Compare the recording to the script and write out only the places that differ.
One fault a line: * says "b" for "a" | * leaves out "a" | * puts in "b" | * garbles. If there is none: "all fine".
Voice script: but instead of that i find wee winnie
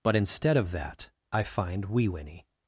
all fine